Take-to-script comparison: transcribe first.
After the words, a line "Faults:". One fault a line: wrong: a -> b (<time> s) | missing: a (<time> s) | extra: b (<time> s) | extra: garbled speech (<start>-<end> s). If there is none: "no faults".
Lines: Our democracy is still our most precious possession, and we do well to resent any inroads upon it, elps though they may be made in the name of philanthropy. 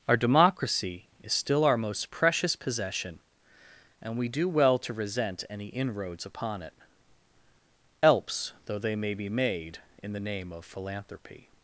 Our democracy is still our most precious possession, and we do well to resent any inroads upon it, elps though they may be made in the name of philanthropy.
Faults:
no faults